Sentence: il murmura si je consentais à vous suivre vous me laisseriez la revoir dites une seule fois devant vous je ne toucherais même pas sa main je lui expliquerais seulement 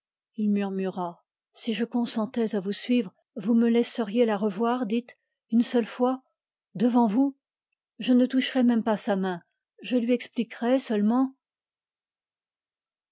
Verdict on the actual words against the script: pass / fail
pass